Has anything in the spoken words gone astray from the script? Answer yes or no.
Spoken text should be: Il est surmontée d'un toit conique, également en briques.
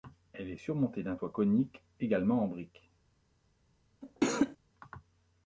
yes